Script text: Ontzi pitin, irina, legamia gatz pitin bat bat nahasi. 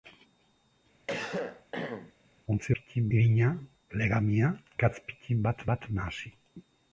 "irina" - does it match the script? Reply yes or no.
yes